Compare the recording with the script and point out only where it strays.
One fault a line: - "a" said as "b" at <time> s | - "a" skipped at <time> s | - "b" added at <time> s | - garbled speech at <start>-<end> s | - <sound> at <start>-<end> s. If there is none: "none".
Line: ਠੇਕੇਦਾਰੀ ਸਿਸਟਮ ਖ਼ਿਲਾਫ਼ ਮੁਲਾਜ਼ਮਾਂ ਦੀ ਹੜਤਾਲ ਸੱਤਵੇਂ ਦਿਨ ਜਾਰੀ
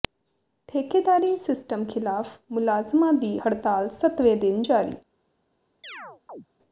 - chirp at 5.8-6.5 s